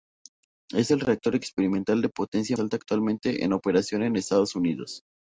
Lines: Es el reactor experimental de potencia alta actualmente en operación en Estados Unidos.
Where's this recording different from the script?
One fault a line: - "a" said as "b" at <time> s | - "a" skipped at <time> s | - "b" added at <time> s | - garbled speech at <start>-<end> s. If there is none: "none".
none